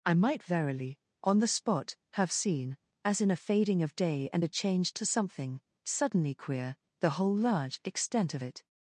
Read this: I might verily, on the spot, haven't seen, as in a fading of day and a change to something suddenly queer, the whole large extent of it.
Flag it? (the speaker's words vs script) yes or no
yes